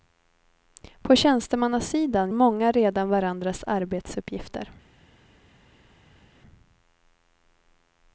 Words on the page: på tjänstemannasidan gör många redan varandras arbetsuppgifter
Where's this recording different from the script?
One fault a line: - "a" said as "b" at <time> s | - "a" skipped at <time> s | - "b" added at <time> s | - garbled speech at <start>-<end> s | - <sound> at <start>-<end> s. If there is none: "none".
- "gör" skipped at 2.3 s